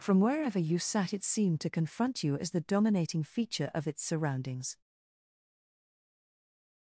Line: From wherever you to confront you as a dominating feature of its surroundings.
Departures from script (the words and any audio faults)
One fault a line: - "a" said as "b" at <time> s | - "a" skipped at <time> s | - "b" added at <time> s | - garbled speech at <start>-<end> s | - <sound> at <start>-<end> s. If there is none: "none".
- "sat it seemed" added at 0.8 s
- "a" said as "the" at 2.5 s